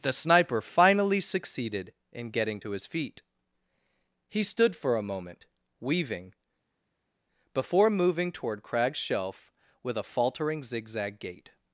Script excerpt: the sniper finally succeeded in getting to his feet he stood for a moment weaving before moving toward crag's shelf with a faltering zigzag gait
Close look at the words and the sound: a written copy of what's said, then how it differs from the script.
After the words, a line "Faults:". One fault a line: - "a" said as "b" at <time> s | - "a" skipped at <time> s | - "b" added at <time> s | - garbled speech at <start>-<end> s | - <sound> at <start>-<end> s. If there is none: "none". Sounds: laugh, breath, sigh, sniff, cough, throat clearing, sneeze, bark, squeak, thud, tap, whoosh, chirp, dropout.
the sniper finally succeeded in getting to his feet he stood for a moment weaving before moving toward crag's shelf with a faltering zigzag gait
Faults:
none